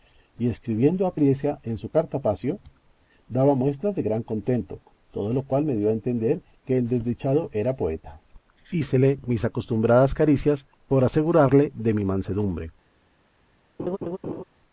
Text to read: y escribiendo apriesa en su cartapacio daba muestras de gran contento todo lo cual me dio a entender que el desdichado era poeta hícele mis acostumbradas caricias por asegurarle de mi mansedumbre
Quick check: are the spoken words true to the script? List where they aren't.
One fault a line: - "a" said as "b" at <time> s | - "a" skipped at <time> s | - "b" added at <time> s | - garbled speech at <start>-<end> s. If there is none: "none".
none